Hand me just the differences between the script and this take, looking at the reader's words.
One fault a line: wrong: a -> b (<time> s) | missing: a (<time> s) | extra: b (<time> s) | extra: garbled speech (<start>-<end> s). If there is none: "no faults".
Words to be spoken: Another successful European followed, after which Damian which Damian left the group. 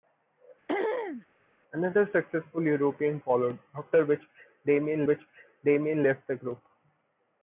no faults